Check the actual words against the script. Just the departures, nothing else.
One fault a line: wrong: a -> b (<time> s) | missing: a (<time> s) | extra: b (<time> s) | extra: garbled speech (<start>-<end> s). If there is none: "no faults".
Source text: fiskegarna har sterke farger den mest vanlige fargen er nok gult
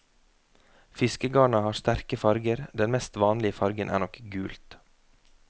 no faults